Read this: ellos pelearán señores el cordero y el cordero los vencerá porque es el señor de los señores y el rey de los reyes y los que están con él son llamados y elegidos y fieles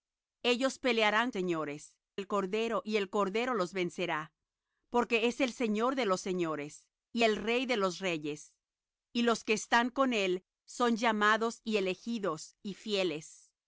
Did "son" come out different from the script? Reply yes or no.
no